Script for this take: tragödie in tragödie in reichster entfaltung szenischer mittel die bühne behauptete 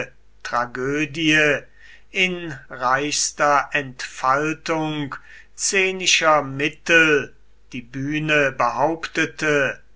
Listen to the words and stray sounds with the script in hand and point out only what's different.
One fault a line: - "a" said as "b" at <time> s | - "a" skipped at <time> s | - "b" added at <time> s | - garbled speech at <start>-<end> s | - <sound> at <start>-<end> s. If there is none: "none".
- "tragödie in" skipped at 2.5 s